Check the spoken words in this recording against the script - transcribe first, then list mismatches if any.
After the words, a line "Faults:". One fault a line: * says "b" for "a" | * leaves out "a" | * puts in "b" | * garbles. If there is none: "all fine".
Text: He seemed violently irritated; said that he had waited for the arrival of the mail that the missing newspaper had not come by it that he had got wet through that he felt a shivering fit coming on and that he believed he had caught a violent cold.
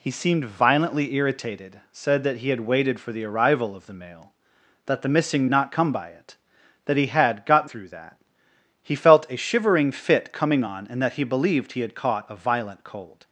He seemed violently irritated; said that he had waited for the arrival of the mail that the missing not come by it that he had got through that he felt a shivering fit coming on and that he believed he had caught a violent cold.
Faults:
* leaves out "newspaper had"
* leaves out "wet"